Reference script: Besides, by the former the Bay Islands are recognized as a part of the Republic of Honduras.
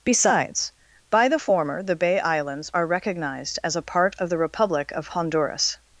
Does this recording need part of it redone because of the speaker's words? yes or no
no